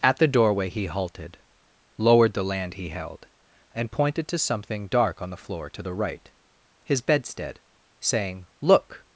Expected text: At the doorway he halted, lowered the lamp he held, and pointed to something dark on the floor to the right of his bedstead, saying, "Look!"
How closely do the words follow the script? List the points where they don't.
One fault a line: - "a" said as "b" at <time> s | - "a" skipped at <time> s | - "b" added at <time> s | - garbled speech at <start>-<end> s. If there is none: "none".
- "lamp" said as "land" at 2.4 s
- "of" skipped at 6.3 s